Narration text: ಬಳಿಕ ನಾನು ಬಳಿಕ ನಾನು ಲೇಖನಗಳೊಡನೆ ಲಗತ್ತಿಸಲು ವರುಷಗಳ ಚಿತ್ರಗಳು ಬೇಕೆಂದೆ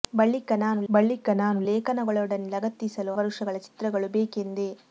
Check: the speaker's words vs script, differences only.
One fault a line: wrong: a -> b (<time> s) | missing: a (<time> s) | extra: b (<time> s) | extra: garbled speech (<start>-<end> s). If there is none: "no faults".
no faults